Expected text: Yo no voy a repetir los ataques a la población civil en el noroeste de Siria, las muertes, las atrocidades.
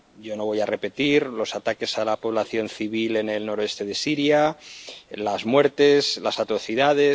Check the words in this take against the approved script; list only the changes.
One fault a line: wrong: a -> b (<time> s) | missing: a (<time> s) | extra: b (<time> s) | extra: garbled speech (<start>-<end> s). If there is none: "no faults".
no faults